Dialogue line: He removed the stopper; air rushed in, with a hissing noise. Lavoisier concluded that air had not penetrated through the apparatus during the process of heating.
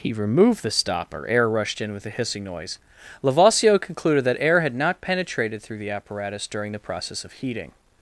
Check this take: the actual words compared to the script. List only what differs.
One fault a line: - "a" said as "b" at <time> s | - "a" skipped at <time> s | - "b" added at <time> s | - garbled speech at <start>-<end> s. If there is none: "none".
none